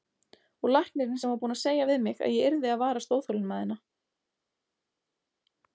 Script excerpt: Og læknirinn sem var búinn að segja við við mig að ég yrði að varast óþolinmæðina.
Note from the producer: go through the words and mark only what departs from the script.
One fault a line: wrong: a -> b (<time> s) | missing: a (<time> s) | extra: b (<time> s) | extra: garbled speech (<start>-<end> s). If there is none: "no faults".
missing: við (2.0 s)